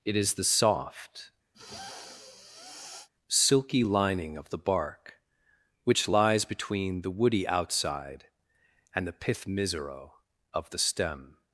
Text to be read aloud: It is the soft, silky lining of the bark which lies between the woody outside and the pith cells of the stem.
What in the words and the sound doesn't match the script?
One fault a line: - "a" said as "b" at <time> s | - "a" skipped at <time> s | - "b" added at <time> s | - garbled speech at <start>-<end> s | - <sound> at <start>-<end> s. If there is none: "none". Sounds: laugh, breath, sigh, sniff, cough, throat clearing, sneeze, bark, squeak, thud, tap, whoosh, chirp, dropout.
- sniff at 1.5-3.1 s
- "cells" said as "misero" at 9.4 s